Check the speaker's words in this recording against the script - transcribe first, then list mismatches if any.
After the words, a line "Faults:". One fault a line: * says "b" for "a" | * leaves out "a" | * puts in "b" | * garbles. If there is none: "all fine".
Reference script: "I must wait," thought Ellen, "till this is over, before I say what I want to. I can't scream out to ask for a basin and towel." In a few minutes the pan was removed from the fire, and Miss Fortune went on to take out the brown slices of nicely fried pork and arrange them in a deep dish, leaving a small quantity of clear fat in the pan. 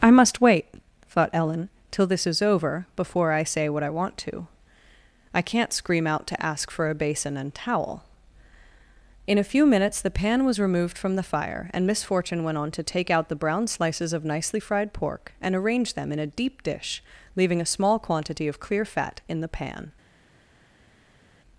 "I must wait," thought Ellen, "till this is over, before I say what I want to. I can't scream out to ask for a basin and towel." In a few minutes the pan was removed from the fire, and Miss Fortune went on to take out the brown slices of nicely fried pork and arrange them in a deep dish, leaving a small quantity of clear fat in the pan.
Faults:
all fine